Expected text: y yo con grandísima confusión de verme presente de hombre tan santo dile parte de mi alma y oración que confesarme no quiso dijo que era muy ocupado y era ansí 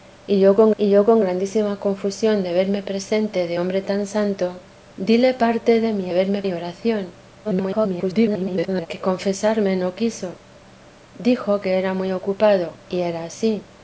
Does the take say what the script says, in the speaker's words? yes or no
no